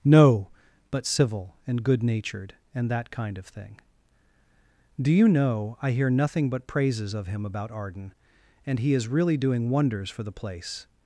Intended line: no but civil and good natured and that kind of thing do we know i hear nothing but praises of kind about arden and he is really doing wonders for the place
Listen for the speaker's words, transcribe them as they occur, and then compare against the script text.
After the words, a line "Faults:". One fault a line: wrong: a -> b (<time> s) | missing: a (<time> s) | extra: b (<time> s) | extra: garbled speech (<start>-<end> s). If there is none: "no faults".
no but civil and good natured and that kind of thing do you know i hear nothing but praises of him about arden and he is really doing wonders for the place
Faults:
wrong: we -> you (5.1 s)
wrong: kind -> him (7.3 s)